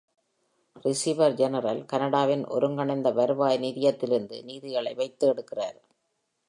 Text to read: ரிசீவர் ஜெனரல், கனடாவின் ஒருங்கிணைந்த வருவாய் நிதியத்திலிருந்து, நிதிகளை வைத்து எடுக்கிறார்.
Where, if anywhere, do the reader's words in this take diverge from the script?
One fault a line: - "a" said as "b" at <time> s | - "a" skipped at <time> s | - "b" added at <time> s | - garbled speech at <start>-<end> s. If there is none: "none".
none